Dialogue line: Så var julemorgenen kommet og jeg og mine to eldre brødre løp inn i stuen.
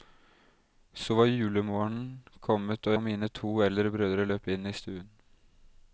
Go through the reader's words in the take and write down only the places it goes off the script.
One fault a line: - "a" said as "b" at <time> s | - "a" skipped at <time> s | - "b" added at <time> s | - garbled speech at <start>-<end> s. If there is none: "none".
- "jeg" skipped at 3.0 s